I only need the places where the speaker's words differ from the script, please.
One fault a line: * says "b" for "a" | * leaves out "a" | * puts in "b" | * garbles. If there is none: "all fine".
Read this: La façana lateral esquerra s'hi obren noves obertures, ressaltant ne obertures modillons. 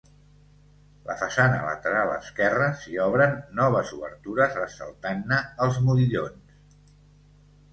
* says "els" for "obertures"